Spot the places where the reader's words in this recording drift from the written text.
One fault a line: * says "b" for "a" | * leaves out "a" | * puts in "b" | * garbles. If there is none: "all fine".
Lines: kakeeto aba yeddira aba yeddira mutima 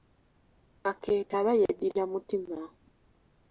* leaves out "aba yeddira"